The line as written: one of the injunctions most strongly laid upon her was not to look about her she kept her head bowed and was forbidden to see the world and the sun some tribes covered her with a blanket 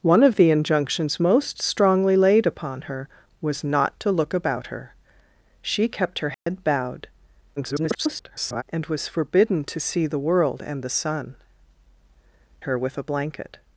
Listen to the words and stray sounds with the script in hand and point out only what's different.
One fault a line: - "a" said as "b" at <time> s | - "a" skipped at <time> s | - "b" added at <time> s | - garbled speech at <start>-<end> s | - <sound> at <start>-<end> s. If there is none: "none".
- dropout at 6.3-6.5 s
- garbled speech at 7.6-8.6 s
- "some tribes covered" skipped at 11.4 s